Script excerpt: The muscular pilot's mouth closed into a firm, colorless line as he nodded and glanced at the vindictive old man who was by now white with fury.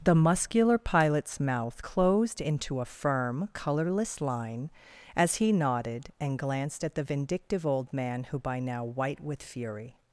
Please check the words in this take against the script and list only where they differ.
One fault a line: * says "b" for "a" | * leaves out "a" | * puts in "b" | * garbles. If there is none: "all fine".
* leaves out "was"